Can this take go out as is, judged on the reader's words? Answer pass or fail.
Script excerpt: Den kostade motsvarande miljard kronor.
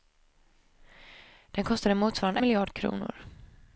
pass